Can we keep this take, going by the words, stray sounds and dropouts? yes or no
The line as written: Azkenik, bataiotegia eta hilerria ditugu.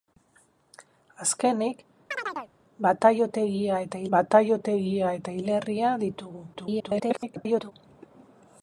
no